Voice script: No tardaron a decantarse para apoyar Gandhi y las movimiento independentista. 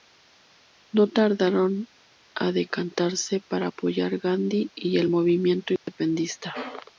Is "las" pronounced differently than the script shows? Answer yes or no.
yes